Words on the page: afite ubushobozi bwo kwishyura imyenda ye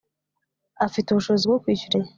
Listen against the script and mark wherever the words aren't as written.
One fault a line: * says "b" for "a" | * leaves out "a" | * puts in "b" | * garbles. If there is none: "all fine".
* leaves out "imyenda"